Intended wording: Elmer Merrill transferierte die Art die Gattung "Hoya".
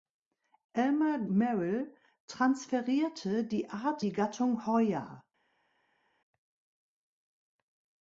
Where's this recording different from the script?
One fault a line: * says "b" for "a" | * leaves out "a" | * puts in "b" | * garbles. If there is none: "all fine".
all fine